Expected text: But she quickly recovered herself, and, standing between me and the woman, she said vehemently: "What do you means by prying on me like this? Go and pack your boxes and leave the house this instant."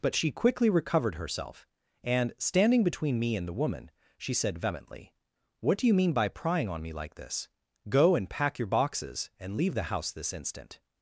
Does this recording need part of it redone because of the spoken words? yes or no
yes